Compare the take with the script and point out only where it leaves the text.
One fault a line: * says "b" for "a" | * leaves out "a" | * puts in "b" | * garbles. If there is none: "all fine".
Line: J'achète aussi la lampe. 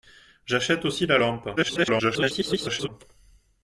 * garbles